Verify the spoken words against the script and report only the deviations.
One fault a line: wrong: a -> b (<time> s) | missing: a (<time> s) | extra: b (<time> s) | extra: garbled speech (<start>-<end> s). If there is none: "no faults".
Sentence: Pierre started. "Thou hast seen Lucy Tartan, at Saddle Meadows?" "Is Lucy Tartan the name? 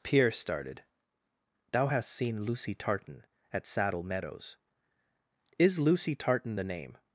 no faults